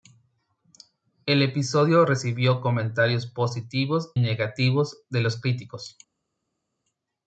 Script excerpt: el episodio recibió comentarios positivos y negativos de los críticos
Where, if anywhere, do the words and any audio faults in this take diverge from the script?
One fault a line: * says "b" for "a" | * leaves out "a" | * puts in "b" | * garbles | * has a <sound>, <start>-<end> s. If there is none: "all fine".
* leaves out "y"